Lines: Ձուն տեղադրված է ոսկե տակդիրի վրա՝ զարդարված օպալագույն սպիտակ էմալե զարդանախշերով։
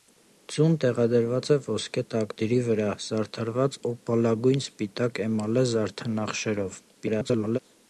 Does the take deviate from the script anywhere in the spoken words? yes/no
yes